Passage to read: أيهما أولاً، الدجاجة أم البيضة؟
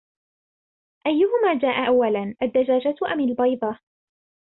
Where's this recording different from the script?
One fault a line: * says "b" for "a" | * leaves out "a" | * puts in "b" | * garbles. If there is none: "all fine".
* puts in "جاء"